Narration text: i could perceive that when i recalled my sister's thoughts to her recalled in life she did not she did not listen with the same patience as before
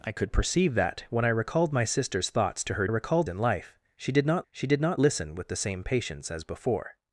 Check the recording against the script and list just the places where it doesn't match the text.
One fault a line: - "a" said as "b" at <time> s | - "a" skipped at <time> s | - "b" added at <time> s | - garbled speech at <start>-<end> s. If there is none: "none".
none